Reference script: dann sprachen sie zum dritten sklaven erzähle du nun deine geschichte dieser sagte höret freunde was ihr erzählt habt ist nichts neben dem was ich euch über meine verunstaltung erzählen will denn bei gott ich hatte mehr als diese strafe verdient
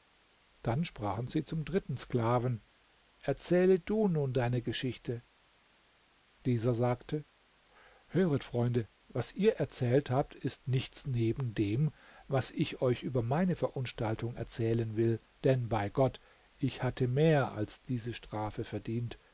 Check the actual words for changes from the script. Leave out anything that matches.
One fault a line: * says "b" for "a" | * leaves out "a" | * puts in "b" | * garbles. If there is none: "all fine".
all fine